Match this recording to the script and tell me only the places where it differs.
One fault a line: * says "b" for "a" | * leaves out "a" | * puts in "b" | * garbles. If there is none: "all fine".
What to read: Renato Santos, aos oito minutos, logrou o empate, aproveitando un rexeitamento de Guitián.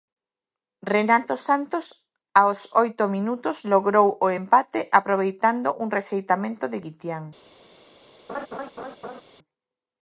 all fine